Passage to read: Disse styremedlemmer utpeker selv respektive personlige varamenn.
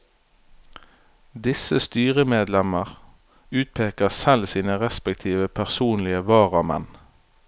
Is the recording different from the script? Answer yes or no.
yes